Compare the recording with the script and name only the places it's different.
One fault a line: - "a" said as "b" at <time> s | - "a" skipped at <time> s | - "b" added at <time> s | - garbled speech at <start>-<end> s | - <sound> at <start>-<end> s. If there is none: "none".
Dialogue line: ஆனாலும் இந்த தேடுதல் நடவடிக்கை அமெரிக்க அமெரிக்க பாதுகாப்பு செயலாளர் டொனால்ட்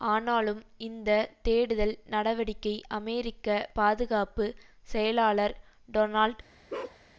- "அமெரிக்க" skipped at 3.5 s
- bark at 6.7-7.0 s